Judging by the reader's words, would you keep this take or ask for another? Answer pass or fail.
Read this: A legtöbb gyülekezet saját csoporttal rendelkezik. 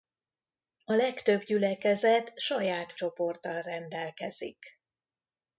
pass